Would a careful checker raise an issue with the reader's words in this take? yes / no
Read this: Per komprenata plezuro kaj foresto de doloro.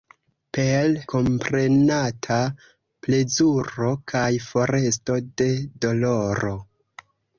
no